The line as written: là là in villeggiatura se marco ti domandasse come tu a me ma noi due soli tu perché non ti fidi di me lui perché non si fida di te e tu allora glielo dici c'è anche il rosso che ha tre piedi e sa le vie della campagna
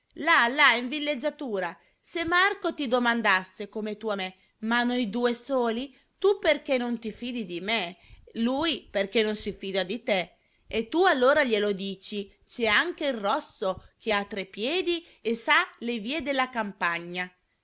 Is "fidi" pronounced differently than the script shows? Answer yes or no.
no